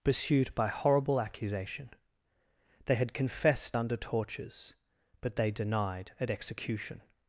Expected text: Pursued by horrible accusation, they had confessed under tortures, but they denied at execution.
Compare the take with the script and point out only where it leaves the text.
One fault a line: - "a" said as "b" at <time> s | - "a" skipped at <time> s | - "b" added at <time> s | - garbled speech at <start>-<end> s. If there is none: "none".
none